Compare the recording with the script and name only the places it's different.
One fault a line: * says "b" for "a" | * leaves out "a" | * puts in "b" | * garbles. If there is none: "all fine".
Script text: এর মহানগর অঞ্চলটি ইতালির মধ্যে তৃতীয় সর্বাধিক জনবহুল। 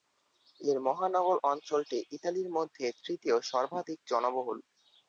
all fine